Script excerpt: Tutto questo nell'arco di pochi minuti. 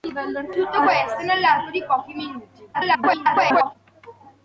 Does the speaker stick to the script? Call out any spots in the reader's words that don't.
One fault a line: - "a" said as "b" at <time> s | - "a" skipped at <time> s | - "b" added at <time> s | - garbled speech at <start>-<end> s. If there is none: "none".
- garbled speech at 2.7-3.8 s